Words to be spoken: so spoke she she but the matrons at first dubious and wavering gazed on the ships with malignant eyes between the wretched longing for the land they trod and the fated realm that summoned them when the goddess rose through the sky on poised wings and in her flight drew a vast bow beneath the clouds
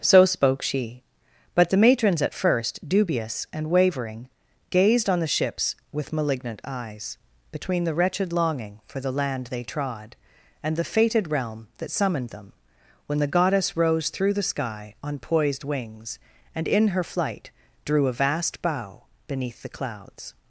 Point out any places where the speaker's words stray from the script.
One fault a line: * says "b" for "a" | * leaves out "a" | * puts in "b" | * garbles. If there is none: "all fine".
* leaves out "she"